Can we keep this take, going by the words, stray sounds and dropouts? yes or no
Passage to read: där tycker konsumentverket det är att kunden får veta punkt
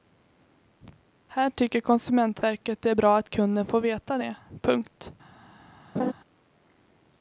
no